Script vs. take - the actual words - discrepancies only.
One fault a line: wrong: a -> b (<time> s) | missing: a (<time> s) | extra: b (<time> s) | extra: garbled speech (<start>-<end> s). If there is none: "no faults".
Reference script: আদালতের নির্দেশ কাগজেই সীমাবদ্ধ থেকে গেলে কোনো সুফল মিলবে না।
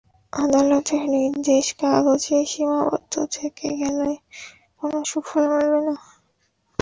no faults